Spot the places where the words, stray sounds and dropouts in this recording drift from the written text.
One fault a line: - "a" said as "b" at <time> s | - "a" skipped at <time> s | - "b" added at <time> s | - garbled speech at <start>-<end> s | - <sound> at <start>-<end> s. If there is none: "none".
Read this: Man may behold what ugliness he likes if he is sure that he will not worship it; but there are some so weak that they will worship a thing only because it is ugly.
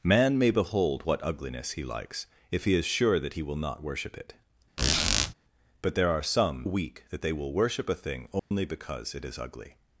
- squeak at 4.8-5.3 s
- "so" skipped at 6.7 s
- dropout at 8.4-8.5 s